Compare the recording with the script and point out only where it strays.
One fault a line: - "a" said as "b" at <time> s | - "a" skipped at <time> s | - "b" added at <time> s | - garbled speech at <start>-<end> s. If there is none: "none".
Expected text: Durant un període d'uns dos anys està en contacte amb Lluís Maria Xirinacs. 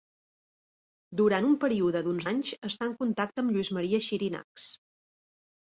- "dos" skipped at 2.3 s